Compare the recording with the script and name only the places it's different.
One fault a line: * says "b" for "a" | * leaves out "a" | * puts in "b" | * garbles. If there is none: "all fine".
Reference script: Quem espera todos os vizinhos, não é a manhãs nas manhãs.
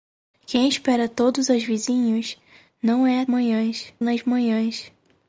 all fine